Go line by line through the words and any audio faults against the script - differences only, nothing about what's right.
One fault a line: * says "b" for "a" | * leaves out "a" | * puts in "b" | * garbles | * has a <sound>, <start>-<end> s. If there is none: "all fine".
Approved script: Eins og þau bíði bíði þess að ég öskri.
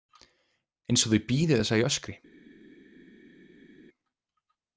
* leaves out "bíði"